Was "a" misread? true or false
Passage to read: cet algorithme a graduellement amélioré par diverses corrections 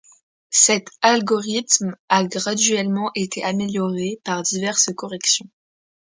false